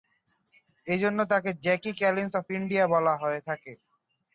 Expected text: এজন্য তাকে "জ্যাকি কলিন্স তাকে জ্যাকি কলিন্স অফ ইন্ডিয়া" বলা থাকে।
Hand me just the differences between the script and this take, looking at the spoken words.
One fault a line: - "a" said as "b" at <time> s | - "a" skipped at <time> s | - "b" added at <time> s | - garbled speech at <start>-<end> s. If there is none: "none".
- "তাকে জ্যাকি কলিন্স" skipped at 2.3 s
- "হয়ে" added at 3.2 s